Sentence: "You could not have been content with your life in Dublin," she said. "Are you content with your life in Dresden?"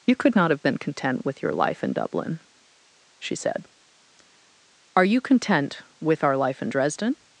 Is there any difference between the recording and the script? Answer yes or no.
yes